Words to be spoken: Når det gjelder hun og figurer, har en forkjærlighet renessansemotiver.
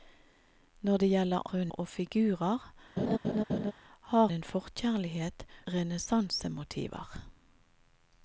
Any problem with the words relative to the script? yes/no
no